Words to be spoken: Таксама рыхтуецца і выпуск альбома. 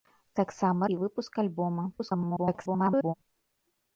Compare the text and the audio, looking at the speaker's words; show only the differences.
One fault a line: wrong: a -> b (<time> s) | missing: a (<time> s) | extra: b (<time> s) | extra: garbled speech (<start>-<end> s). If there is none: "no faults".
missing: рыхтуецца (0.9 s)
extra: garbled speech (1.9-3.1 s)